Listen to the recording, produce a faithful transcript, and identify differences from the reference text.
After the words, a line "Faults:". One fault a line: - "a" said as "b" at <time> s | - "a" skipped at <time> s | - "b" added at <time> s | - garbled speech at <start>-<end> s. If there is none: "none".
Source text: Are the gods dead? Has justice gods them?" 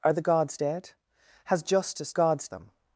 Are the gods dead? Has justice gods them?"
Faults:
none